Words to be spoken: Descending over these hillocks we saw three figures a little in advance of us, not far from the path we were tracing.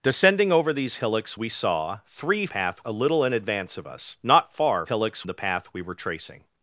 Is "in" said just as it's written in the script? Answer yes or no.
yes